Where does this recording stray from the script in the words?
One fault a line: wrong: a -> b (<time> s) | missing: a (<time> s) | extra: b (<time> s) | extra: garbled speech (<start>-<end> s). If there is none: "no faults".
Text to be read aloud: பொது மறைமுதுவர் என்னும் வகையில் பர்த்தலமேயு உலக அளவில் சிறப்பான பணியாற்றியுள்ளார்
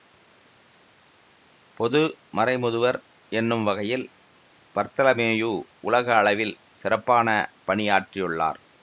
no faults